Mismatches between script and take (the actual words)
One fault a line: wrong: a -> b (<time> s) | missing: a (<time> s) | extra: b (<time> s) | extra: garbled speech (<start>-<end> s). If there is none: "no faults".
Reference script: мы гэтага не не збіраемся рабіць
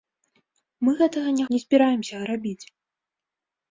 no faults